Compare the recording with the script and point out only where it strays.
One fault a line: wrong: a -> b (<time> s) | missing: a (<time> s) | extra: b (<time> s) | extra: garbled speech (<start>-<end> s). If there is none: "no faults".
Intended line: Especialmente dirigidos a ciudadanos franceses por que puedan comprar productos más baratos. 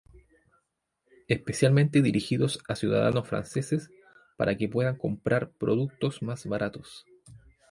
wrong: por -> para (4.4 s)